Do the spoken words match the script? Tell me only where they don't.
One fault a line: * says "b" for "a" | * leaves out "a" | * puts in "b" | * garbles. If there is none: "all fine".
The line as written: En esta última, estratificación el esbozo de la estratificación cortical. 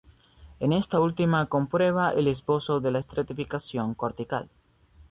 * says "comprueba" for "estratificación"